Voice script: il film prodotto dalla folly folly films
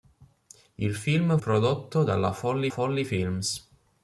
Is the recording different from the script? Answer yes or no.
no